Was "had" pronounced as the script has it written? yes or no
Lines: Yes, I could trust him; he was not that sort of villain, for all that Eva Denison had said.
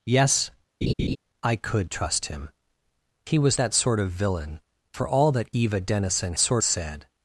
no